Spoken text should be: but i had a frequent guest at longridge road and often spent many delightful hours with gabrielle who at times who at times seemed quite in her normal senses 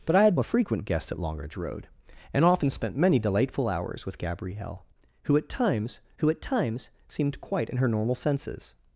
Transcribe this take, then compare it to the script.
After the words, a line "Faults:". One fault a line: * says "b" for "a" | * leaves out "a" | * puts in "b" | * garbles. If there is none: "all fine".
but i had a frequent guest at longridge road and often spent many delightful hours with gabrielle who at times who at times seemed quite in her normal senses
Faults:
all fine